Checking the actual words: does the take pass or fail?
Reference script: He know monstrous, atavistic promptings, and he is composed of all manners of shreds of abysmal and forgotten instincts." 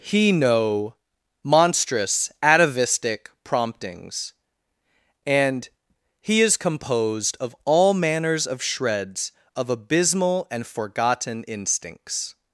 pass